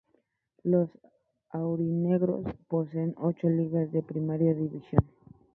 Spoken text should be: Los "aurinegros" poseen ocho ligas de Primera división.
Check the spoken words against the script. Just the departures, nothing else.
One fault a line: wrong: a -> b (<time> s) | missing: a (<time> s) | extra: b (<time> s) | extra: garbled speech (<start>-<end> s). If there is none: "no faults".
no faults